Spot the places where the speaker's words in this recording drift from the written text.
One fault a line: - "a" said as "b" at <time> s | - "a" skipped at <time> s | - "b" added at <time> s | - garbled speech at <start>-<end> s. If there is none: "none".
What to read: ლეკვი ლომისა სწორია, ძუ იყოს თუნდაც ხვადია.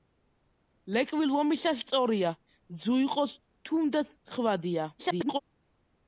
- garbled speech at 5.0-5.4 s